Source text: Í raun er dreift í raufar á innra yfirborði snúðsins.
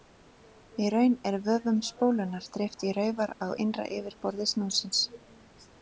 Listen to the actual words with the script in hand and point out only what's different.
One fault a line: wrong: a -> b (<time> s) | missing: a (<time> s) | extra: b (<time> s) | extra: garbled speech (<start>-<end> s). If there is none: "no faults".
extra: vöfum spólunnar (1.5 s)